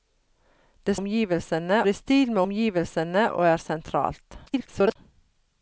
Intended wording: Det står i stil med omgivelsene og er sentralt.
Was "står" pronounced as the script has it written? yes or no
no